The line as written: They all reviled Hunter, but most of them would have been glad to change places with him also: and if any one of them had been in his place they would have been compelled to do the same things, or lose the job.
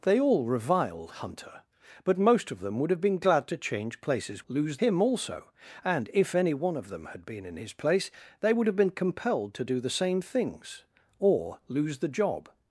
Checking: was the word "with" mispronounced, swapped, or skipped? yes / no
yes